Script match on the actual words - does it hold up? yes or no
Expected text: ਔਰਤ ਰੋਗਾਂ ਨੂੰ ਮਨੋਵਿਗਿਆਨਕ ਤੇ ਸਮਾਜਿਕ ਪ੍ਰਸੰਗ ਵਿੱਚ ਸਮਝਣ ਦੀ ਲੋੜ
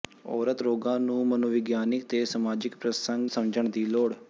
no